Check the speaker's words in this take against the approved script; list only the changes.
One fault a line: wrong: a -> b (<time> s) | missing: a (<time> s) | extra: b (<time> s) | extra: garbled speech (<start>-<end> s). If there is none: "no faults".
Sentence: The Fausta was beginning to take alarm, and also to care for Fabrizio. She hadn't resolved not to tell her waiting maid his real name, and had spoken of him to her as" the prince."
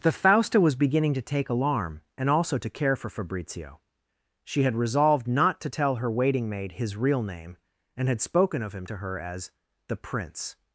wrong: hadn't -> had (4.6 s)